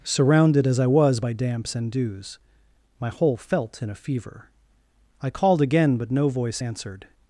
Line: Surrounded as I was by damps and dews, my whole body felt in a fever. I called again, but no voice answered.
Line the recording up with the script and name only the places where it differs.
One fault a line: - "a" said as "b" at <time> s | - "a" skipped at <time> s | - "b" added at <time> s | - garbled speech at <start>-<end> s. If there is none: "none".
- "body" skipped at 3.4 s